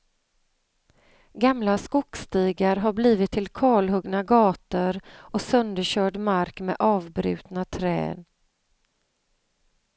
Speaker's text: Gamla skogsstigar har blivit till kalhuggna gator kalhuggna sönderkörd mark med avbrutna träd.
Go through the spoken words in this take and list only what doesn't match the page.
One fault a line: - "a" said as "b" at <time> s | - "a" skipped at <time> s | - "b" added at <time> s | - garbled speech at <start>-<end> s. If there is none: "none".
- "kalhuggna" said as "och" at 5.1 s